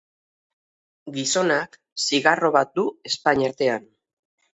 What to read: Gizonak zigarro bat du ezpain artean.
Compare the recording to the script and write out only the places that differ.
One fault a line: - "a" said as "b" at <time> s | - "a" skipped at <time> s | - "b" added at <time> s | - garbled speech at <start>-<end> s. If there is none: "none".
none